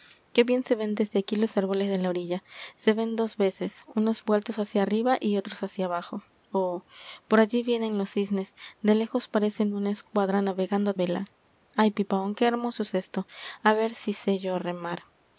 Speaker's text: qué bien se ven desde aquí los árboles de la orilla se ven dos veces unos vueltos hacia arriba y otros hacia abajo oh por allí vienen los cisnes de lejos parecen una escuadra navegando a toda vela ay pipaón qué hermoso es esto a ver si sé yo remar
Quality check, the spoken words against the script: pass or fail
fail